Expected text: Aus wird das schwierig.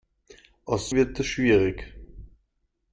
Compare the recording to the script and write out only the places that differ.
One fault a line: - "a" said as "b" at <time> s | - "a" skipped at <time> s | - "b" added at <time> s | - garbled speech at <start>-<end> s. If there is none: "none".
none